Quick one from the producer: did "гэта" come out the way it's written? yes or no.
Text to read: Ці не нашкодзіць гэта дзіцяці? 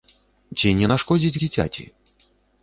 no